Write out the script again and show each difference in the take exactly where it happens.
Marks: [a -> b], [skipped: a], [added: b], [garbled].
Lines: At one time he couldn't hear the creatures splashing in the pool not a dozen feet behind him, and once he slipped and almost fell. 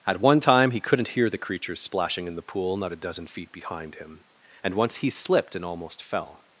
At one time he couldn't hear the creatures splashing in the pool not a dozen feet behind him, and once he slipped and almost fell.